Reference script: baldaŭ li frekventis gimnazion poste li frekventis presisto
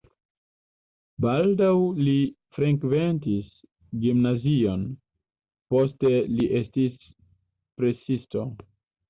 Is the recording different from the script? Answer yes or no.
yes